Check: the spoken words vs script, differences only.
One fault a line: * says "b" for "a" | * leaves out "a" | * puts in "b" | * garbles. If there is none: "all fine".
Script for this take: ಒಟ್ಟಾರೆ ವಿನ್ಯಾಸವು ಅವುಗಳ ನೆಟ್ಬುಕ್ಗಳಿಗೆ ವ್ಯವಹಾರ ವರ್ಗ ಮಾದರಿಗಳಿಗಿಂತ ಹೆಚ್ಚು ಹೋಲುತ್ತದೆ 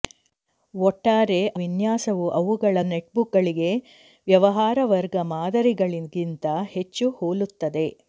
all fine